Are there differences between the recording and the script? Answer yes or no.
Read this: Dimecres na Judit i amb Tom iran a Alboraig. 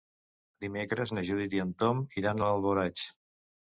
yes